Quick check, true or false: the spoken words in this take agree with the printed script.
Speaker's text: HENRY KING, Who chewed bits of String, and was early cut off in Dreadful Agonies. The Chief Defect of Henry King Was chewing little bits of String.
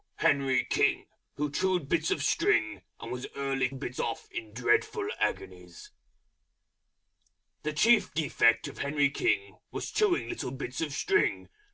false